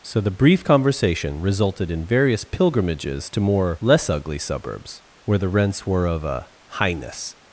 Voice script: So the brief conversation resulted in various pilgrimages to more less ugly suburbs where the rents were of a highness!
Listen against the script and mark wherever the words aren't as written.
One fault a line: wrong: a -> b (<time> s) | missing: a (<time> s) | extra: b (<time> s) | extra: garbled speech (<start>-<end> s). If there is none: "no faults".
no faults